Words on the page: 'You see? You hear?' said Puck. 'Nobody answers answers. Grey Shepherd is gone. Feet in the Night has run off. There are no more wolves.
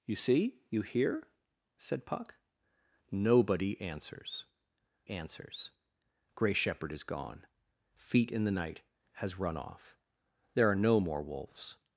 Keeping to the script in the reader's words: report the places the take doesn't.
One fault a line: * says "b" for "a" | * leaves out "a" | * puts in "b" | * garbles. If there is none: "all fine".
all fine